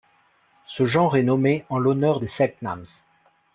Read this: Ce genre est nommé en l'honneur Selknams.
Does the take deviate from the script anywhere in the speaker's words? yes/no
yes